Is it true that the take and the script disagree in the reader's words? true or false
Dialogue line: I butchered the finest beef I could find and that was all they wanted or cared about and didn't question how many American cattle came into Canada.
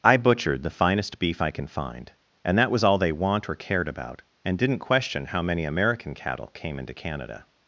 true